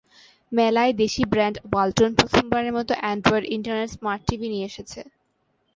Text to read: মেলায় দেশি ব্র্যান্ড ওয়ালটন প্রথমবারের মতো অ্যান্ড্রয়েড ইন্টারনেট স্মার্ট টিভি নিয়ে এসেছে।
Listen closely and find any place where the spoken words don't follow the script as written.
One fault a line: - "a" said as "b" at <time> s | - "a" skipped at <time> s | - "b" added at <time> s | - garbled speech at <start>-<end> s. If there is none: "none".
none